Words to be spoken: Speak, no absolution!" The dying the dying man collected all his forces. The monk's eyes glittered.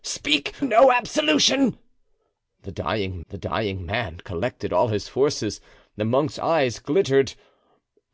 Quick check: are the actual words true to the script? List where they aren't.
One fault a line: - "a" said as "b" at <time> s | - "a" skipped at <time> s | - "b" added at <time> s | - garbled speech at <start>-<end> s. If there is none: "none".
none